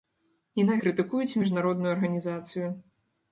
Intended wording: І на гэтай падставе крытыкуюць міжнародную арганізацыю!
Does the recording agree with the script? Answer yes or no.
no